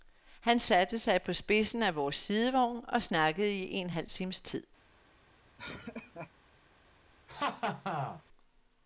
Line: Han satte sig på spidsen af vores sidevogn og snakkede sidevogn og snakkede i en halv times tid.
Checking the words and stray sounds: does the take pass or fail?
fail